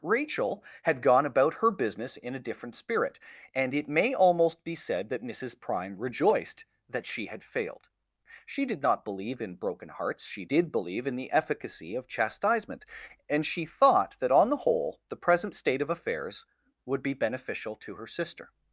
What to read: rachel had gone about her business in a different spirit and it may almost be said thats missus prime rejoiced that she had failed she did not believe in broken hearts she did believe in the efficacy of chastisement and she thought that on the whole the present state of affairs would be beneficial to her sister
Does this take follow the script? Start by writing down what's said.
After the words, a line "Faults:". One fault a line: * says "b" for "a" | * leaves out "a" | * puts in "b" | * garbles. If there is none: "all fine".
rachel had gone about her business in a different spirit and it may almost be said that missus prime rejoiced that she had failed she did not believe in broken hearts she did believe in the efficacy of chastisement and she thought that on the whole the present state of affairs would be beneficial to her sister
Faults:
* says "that" for "thats"